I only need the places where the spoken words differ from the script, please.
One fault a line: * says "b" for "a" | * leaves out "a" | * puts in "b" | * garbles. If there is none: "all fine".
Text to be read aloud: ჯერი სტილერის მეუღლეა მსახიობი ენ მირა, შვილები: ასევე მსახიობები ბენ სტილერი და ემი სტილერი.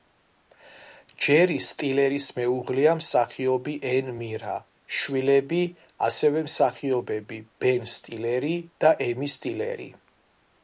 all fine